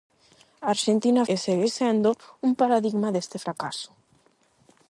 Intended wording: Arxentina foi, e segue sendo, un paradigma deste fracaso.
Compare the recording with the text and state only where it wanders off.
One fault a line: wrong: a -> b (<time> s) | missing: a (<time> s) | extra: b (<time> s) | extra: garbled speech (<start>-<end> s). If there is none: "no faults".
missing: foi (1.2 s)